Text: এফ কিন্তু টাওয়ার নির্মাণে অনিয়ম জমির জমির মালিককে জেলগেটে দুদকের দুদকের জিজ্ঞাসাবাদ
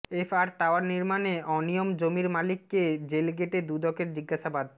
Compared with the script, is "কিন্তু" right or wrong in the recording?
wrong